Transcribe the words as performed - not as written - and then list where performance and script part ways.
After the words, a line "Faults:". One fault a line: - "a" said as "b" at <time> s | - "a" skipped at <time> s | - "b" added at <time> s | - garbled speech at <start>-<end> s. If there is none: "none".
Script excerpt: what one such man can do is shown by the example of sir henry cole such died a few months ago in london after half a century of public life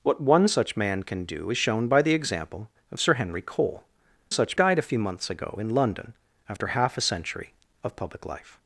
what one such man can do is shown by the example of sir henry cole such died a few months ago in london after half a century of public life
Faults:
none